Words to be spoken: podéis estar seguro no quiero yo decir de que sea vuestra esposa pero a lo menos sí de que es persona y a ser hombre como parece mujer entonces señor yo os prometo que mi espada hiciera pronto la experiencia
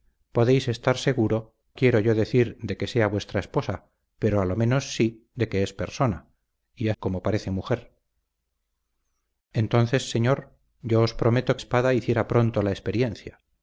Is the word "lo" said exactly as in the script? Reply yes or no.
yes